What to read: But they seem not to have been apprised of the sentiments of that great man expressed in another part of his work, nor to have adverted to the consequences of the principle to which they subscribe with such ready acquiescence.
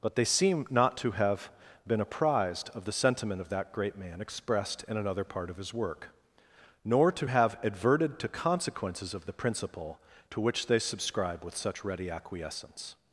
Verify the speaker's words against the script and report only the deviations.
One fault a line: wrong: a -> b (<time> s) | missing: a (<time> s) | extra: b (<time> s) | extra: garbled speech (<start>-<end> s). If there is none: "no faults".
wrong: sentiments -> sentiment (2.9 s)
missing: the (8.3 s)